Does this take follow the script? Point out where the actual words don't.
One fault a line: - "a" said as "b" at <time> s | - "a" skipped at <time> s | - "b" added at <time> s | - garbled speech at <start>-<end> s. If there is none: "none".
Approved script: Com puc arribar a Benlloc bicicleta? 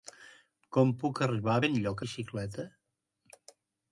none